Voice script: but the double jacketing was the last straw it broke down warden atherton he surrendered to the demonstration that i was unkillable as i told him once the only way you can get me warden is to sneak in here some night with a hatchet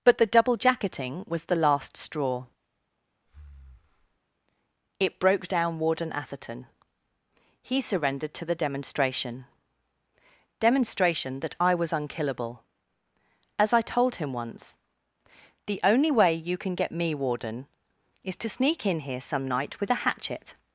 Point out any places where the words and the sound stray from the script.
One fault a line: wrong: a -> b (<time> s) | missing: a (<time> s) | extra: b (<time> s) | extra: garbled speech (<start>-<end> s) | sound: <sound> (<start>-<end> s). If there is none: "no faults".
sound: breath (3.3-4.2 s)
extra: demonstration (10.6 s)